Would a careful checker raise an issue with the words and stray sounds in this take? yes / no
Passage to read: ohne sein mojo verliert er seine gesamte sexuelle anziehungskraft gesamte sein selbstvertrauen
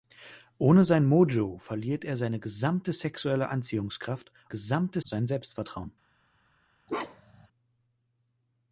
yes